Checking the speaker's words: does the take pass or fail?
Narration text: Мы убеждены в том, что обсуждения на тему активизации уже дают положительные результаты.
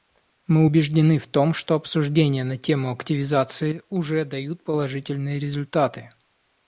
pass